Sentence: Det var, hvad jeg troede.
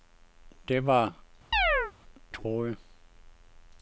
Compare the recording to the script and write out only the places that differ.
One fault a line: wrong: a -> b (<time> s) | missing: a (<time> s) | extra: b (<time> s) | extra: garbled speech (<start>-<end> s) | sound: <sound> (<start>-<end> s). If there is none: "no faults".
missing: hvad jeg (1.1 s)
sound: chirp (1.5-1.9 s)